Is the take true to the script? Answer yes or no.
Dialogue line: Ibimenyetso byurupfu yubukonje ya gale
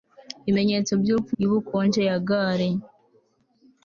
yes